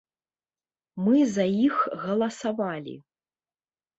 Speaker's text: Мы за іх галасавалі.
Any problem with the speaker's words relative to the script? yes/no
no